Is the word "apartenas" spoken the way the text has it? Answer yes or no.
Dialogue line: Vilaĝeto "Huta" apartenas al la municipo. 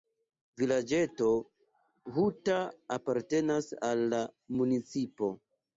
yes